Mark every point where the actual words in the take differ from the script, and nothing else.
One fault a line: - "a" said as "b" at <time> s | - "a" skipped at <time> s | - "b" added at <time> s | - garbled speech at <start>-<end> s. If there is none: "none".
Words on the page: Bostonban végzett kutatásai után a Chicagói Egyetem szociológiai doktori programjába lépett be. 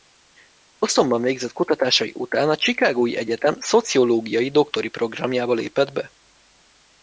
none